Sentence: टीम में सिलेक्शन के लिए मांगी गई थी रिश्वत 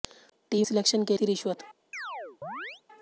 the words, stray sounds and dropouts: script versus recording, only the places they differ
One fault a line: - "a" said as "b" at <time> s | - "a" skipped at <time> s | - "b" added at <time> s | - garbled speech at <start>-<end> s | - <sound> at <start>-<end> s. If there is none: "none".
- "में" skipped at 0.7 s
- "लिए मांगी गई" skipped at 1.2 s
- chirp at 1.9-2.8 s